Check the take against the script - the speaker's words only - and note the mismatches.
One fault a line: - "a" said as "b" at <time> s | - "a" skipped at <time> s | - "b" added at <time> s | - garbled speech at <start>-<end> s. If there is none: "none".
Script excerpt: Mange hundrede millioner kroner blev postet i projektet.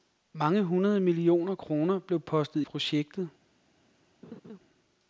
- "i" skipped at 2.6 s